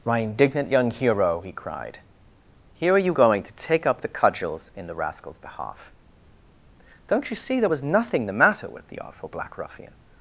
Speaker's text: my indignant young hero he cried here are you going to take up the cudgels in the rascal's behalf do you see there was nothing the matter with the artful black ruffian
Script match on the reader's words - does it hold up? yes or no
no